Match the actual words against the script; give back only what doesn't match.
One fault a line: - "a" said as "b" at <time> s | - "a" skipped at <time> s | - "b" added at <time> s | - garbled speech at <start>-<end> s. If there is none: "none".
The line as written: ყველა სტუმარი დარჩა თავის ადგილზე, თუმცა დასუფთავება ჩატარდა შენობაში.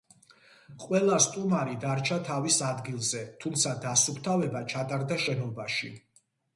none